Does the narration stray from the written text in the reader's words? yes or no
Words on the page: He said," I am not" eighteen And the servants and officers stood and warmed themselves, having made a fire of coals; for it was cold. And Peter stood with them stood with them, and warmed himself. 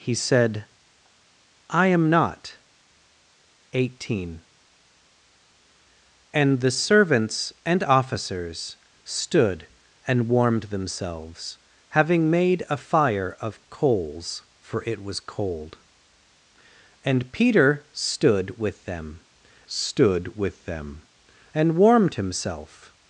no